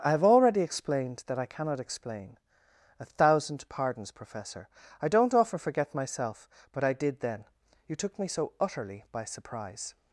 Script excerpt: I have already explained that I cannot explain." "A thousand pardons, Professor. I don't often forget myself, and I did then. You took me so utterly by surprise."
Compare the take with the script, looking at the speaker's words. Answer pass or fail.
fail